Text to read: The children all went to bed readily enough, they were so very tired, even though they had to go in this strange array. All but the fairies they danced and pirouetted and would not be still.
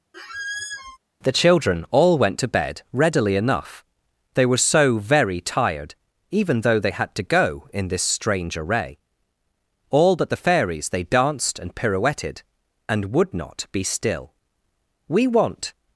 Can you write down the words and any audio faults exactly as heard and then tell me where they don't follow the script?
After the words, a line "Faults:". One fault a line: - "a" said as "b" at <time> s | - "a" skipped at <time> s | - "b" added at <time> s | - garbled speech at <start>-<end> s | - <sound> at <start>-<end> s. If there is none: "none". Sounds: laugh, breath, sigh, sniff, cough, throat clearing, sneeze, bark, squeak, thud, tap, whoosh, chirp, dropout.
The children all went to bed readily enough, they were so very tired, even though they had to go in this strange array. All but the fairies they danced and pirouetted and would not be still. "We want
Faults:
- squeak at 0.1-1.0 s
- "We want" added at 15.1 s